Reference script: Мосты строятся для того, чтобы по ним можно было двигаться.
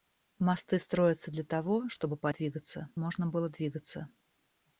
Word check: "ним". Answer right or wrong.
wrong